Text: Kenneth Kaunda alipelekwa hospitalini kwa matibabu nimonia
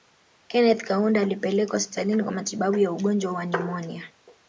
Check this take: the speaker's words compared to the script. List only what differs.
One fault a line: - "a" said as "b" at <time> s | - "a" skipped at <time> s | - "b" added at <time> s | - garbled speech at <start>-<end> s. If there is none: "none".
- "ya ugonjwa wa" added at 2.8 s